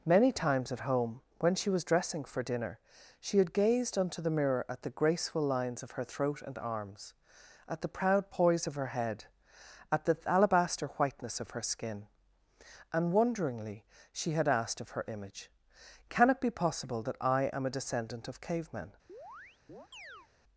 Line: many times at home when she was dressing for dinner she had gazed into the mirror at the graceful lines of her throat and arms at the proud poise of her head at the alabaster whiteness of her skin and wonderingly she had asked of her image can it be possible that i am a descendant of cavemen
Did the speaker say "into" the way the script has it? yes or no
no